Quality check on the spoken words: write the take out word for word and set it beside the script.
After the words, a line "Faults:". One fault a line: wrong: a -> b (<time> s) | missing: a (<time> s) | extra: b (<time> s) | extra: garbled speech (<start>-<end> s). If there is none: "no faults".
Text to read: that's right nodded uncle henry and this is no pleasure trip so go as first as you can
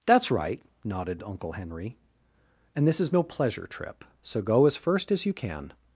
that's right nodded uncle henry and this is no pleasure trip so go as first as you can
Faults:
no faults